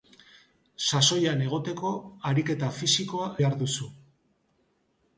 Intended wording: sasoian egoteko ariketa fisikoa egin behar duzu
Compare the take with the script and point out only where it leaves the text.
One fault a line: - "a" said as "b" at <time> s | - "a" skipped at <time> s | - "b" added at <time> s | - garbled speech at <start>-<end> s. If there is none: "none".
- "egin" skipped at 3.3 s